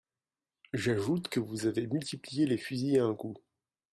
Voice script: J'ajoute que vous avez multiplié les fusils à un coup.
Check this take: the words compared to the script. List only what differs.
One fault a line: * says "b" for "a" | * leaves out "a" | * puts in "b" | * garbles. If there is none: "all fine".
all fine